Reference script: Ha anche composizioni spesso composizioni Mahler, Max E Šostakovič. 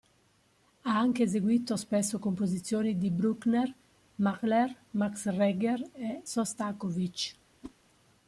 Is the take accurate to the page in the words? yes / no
no